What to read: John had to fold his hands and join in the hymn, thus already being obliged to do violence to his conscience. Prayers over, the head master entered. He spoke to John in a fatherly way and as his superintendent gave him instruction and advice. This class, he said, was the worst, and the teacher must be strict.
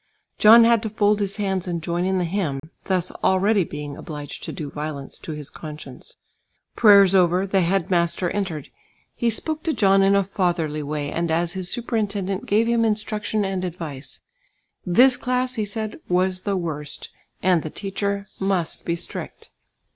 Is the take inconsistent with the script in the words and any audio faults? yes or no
yes